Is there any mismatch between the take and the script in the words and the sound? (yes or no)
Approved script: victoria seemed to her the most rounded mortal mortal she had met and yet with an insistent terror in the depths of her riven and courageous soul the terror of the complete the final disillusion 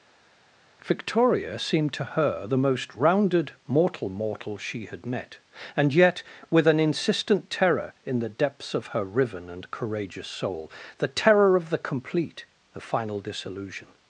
no